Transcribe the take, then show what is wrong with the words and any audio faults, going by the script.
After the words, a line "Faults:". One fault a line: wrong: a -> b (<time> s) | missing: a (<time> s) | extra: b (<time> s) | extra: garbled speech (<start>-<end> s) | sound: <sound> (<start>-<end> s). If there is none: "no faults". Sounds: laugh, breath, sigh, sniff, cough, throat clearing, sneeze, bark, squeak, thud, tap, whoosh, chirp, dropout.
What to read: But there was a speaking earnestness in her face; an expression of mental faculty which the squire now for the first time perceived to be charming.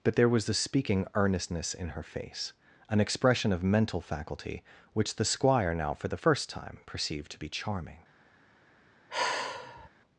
But there was the speaking earnestness in her face; an expression of mental faculty which the squire now for the first time perceived to be charming.
Faults:
wrong: a -> the (0.5 s)
sound: sigh (9.1-9.9 s)